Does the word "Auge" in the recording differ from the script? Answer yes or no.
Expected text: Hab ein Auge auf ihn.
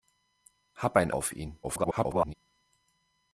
yes